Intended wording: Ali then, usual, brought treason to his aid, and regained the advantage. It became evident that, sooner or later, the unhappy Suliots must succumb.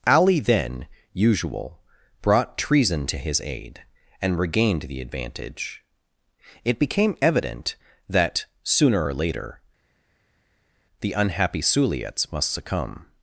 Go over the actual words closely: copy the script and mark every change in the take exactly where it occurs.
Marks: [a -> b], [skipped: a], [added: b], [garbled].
Ali then, usual, brought treason to his aid, and regained the advantage. It became evident that, sooner or later, the unhappy Suliots must succumb.